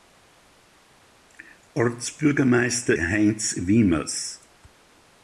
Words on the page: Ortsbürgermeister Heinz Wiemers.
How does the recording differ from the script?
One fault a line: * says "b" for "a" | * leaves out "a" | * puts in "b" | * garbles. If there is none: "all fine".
all fine